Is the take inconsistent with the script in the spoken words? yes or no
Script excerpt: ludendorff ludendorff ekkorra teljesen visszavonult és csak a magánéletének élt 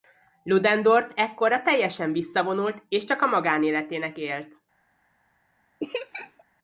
yes